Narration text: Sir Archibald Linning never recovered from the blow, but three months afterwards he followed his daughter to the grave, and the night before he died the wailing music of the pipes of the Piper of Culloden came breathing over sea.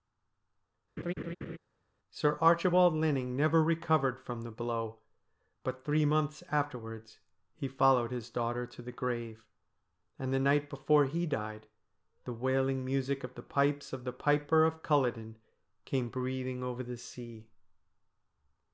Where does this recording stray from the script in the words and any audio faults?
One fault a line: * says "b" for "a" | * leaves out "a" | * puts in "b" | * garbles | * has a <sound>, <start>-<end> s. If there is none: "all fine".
* has a laugh, 1.0-1.6 s
* puts in "the"